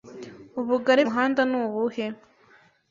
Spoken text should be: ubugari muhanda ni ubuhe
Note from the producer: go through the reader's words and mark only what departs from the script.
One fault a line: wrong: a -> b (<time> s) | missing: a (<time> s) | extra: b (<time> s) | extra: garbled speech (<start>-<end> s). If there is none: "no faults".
no faults